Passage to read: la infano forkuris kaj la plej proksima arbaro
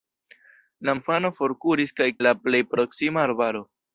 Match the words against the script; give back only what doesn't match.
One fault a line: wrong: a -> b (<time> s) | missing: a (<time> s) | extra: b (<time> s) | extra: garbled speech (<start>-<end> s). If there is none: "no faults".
no faults